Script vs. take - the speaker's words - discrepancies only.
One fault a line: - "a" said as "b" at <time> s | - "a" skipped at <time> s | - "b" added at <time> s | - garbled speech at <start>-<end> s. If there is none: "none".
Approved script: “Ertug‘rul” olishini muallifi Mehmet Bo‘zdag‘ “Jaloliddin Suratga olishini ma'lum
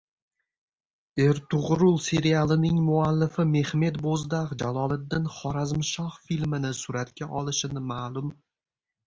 - "olishini" said as "serialining" at 2.0 s
- "Xorazmshoh filmini" added at 5.4 s